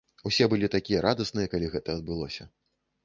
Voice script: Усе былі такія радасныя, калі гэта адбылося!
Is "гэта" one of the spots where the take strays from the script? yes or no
no